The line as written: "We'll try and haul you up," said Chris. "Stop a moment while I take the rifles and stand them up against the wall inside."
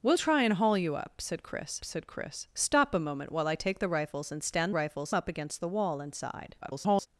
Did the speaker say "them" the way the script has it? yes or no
no